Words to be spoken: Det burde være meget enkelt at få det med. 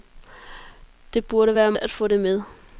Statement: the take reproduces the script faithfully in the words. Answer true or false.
false